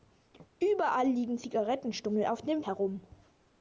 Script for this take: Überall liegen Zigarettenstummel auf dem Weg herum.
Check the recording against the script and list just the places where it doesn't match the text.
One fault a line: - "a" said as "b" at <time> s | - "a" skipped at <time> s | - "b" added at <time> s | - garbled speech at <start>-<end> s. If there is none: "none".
- "Weg" skipped at 2.6 s